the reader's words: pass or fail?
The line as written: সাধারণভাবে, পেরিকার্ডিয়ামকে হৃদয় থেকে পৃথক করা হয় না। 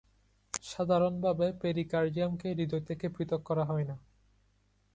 pass